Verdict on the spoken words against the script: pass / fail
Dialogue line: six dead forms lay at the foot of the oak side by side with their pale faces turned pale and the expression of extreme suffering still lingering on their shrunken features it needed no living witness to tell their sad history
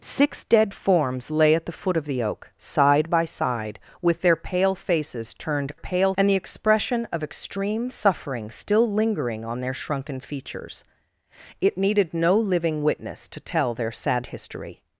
pass